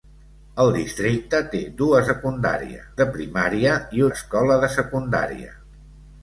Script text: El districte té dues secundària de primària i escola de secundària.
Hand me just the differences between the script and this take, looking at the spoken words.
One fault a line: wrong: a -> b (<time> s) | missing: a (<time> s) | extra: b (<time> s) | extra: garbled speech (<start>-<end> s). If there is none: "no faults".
no faults